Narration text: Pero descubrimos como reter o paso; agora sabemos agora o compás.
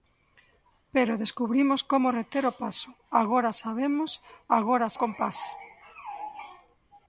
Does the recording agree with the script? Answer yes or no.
yes